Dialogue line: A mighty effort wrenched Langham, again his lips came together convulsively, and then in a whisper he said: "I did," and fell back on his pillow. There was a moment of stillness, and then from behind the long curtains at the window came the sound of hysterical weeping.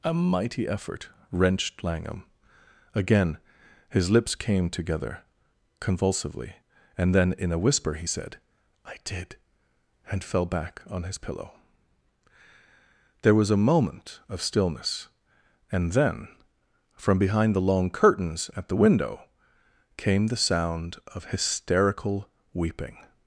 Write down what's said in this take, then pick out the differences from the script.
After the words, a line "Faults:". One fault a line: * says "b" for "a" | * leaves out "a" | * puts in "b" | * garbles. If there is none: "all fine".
A mighty effort wrenched Langham, again his lips came together convulsively, and then in a whisper he said: "I did," and fell back on his pillow. There was a moment of stillness, and then from behind the long curtains at the window came the sound of hysterical weeping.
Faults:
all fine